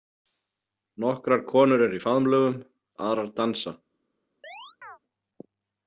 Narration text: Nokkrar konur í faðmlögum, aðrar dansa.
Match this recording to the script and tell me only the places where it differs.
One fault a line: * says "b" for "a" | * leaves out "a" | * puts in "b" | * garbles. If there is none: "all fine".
* puts in "eru"